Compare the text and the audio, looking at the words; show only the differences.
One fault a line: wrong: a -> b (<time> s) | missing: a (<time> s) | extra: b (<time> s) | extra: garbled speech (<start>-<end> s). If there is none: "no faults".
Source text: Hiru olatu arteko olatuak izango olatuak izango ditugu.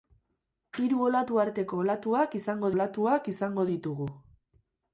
no faults